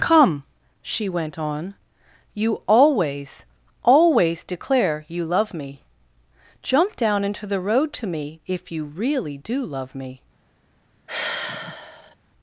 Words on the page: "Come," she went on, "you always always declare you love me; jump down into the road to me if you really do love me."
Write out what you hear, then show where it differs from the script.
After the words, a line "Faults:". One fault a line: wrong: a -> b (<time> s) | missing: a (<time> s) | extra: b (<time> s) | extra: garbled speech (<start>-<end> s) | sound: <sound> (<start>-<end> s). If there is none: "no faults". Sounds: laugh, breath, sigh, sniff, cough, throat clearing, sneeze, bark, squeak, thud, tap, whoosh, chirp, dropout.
"Come," she went on, "you always always declare you love me; jump down into the road to me if you really do love me."
Faults:
sound: sigh (11.1-12.2 s)